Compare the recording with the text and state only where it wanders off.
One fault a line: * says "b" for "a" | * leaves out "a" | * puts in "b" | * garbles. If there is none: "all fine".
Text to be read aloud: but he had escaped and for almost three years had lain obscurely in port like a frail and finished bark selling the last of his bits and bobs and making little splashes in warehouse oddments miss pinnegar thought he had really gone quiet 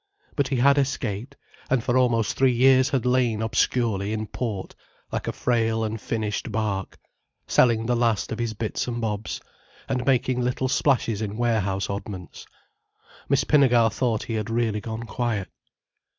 all fine